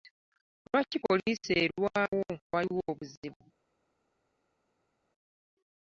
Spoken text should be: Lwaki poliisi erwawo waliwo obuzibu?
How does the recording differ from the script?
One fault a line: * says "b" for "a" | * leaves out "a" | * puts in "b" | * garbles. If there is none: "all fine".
all fine